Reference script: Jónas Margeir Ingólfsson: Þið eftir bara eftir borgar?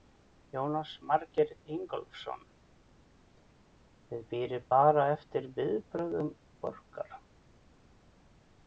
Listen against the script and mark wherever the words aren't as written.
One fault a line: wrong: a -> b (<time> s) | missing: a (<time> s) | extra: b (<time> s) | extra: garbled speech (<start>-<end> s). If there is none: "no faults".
wrong: eftir -> bíðið (4.3 s)
extra: viðbrögðum (5.6 s)